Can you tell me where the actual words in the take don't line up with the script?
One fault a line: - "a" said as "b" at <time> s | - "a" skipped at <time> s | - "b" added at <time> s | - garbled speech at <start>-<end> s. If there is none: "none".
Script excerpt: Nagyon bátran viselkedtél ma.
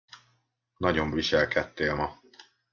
- "bátran" skipped at 1.1 s